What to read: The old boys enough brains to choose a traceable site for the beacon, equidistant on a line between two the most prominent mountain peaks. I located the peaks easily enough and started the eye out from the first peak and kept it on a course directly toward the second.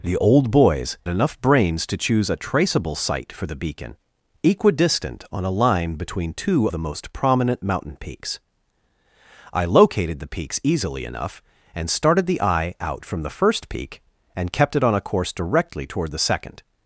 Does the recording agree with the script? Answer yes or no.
yes